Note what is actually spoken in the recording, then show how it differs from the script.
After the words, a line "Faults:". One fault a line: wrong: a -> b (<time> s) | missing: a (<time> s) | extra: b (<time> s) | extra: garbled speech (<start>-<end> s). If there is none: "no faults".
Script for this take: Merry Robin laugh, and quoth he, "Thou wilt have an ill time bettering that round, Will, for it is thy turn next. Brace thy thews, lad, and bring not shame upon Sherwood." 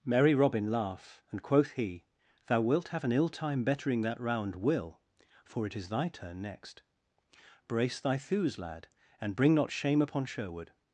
Merry Robin laugh, and quoth he, "Thou wilt have an ill time bettering that round, Will, for it is thy turn next. Brace thy thews, lad, and bring not shame upon Sherwood."
Faults:
no faults